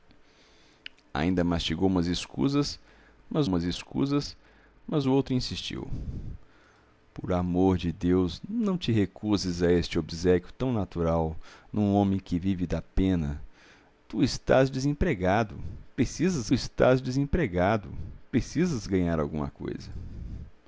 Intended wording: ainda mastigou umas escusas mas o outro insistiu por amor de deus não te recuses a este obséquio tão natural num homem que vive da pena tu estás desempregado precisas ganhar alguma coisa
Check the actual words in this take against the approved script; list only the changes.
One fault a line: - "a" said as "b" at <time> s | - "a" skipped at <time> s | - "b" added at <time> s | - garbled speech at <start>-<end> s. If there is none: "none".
- "umas escusas mas" added at 3.4 s
- "estás desempregado precisas" added at 16.5 s